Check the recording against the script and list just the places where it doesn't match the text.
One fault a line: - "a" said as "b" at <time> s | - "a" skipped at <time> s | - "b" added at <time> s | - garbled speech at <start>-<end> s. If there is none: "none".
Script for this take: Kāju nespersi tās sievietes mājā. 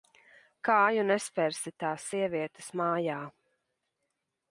none